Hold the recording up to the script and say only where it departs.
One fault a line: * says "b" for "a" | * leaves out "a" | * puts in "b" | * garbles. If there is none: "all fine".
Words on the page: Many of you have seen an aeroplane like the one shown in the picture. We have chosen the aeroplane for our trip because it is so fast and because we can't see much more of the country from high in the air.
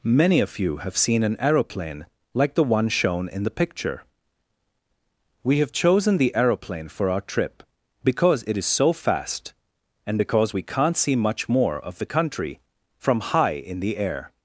all fine